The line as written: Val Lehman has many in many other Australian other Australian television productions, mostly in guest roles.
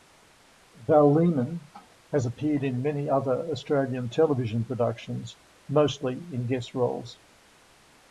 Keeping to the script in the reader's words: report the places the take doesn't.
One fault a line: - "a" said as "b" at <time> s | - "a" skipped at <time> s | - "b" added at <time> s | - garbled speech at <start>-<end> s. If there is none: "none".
- "many" said as "appeared" at 2.3 s
- "other Australian" skipped at 4.1 s